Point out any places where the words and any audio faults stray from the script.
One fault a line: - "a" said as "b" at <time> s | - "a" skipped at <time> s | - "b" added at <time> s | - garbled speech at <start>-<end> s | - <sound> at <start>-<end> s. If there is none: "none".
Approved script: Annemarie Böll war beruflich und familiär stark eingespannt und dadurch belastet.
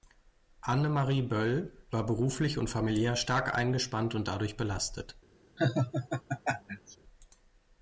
- laugh at 5.6-7.0 s